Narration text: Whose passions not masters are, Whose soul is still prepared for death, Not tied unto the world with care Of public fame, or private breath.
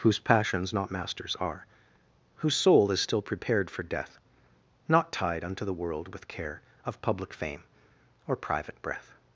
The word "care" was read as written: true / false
true